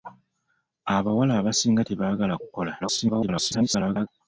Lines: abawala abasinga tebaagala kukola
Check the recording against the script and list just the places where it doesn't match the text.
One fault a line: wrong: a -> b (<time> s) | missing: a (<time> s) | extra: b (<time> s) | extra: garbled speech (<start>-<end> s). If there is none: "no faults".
extra: garbled speech (2.8-4.1 s)